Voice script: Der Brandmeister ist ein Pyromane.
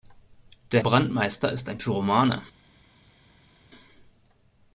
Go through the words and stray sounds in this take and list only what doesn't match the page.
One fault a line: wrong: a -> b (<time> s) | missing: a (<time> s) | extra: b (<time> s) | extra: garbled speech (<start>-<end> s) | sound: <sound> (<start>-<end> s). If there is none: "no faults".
no faults